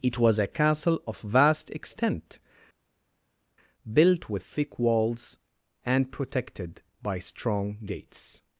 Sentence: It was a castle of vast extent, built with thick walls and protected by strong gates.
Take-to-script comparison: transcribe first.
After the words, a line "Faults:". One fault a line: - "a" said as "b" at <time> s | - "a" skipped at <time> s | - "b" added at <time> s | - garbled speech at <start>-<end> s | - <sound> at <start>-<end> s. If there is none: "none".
It was a castle of vast extent, built with thick walls and protected by strong gates.
Faults:
none